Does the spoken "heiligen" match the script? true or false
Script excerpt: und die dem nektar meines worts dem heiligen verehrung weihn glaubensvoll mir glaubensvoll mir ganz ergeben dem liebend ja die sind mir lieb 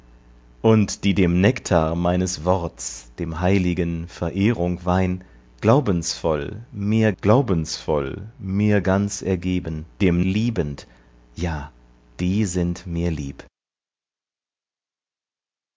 true